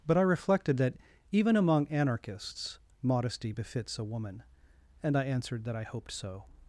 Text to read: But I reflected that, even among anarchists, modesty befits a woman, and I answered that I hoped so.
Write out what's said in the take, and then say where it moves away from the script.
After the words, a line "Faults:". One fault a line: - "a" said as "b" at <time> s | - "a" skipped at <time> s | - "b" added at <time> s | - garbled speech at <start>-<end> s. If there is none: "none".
But I reflected that, even among anarchists, modesty befits a woman, and I answered that I hoped so.
Faults:
none